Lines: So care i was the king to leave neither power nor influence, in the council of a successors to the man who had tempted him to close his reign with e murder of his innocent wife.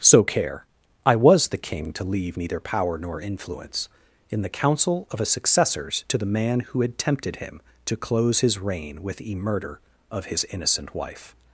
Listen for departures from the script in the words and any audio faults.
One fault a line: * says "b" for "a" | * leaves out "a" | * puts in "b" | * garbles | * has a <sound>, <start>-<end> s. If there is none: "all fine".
all fine